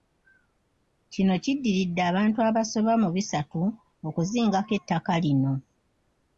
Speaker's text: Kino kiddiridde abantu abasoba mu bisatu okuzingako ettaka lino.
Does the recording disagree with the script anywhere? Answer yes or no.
no